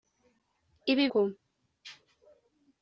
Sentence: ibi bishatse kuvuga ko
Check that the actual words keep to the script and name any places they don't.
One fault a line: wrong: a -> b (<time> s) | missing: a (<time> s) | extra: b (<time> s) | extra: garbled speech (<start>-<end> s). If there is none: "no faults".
missing: bishatse kuvuga (1.1 s)